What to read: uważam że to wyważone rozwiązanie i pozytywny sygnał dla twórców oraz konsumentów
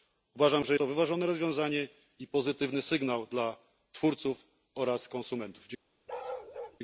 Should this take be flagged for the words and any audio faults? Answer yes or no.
yes